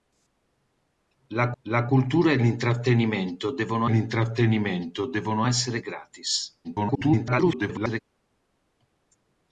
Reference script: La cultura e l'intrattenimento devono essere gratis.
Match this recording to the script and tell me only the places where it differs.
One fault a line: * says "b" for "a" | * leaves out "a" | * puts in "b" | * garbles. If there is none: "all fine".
* puts in "la"
* puts in "l'intrattenimento devono"
* garbles